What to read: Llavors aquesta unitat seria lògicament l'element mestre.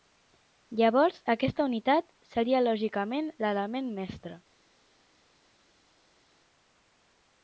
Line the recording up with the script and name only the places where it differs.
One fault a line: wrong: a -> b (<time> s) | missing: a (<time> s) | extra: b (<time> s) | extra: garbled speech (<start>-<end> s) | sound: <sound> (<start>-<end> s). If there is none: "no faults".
no faults